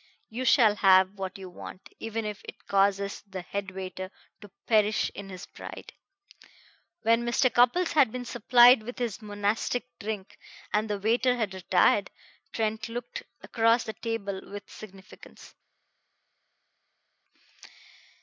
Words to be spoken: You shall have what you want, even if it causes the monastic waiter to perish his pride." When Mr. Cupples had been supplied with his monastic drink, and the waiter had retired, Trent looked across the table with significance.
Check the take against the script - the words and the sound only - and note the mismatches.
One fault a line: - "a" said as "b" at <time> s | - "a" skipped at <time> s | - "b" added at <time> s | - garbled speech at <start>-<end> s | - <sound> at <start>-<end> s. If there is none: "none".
- "monastic" said as "head" at 3.4 s
- "in" added at 5.1 s